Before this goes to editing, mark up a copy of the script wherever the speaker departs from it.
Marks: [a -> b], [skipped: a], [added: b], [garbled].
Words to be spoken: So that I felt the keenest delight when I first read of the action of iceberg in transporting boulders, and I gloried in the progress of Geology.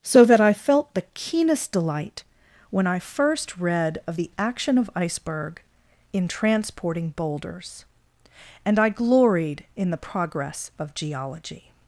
So that I felt the keenest delight when I first read of the action of iceberg in transporting boulders, and I gloried in the progress of Geology.